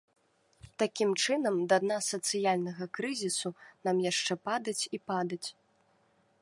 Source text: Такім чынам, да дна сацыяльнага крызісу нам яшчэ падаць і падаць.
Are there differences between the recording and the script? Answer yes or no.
no